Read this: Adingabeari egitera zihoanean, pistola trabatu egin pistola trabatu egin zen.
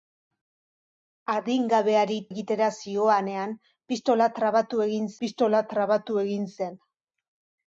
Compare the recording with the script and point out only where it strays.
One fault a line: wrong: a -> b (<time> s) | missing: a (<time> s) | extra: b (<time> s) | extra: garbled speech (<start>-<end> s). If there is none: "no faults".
no faults